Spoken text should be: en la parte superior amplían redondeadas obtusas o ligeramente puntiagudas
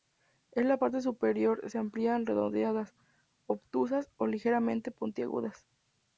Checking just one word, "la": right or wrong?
right